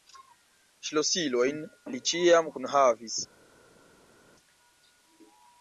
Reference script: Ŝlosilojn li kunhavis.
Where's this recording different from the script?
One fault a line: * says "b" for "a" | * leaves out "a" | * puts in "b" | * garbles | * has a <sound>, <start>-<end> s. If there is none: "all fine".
* puts in "ĉiam"